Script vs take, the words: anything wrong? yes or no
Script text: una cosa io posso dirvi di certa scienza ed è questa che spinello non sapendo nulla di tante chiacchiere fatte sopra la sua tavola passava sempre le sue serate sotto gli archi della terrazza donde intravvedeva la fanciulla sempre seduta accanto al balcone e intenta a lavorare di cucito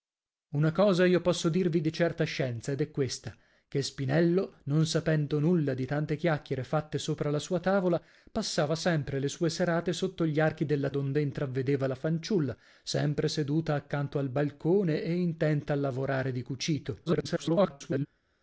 yes